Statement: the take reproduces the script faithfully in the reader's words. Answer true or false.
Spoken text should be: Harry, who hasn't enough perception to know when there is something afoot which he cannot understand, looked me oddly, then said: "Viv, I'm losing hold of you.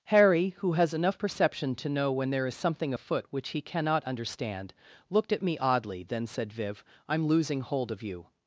false